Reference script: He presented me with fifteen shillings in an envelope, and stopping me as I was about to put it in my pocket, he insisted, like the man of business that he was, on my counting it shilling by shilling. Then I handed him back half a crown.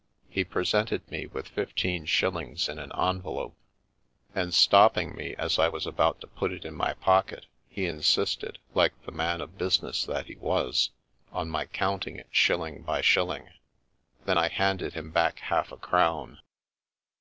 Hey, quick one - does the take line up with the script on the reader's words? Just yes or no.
yes